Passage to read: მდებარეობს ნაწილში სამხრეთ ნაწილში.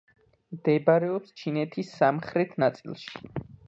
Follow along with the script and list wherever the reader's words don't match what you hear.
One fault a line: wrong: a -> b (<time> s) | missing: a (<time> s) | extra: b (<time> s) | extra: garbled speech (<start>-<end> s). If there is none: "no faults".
wrong: ნაწილში -> ჩინეთის (1.4 s)